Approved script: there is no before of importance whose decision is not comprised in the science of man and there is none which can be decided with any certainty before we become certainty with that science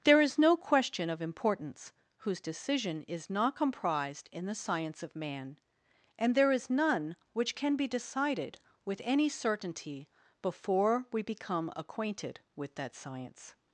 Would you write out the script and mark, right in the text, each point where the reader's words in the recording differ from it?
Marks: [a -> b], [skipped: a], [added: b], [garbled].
there is no [before -> question] of importance whose decision is not comprised in the science of man and there is none which can be decided with any certainty before we become [certainty -> acquainted] with that science